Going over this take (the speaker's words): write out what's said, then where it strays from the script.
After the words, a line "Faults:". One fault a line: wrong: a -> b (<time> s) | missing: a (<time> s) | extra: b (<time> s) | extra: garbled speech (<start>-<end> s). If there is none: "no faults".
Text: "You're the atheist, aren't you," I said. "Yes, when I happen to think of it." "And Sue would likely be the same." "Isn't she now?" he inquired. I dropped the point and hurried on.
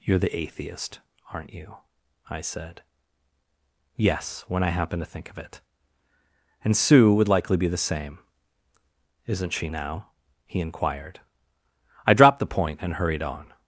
"You're the atheist, aren't you," I said. "Yes, when I happen to think of it." "And Sue would likely be the same." "Isn't she now?" he inquired. I dropped the point and hurried on.
Faults:
no faults